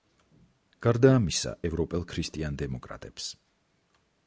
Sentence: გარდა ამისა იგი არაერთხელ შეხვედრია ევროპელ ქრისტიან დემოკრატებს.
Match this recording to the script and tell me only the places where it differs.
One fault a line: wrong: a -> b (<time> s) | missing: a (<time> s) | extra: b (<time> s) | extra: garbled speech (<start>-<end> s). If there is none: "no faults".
missing: იგი არაერთხელ შეხვედრია (1.5 s)